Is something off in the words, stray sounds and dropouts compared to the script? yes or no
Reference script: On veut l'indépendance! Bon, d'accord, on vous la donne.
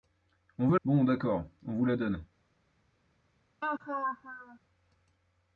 yes